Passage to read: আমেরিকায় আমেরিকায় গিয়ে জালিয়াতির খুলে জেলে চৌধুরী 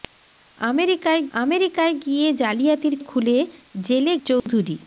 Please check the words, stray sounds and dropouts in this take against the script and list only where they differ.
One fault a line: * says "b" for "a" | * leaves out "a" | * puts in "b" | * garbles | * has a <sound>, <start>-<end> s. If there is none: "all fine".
* has a dropout, 4.4-4.5 s